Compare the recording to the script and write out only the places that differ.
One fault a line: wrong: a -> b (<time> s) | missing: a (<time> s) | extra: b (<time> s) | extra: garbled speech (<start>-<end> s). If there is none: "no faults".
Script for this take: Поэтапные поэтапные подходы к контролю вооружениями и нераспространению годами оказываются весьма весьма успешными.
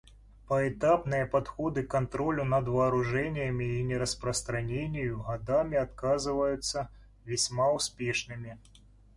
missing: поэтапные (1.3 s)
extra: над (2.4 s)
missing: весьма (7.7 s)